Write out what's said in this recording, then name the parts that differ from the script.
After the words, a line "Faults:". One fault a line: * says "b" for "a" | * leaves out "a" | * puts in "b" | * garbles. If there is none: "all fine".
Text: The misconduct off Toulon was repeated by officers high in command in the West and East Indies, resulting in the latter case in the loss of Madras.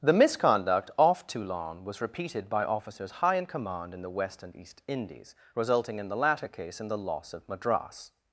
The misconduct off Toulon was repeated by officers high in command in the West and East Indies, resulting in the latter case in the loss of Madras.
Faults:
all fine